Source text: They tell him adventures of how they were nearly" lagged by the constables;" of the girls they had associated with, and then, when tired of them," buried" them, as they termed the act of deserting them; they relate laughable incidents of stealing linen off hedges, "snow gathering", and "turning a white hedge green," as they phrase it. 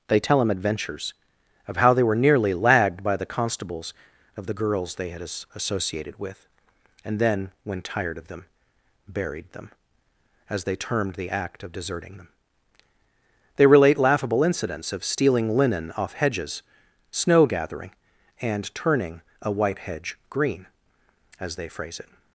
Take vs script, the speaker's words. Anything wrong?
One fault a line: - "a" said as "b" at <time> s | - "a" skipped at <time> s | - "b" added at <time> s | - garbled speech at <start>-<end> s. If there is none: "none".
- "as" added at 5.2 s